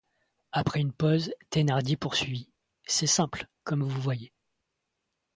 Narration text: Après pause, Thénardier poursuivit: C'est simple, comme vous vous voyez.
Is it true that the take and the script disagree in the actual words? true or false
true